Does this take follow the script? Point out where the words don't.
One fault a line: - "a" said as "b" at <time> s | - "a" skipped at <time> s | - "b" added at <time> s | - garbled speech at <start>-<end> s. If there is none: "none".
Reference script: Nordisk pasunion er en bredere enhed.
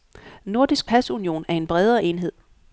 none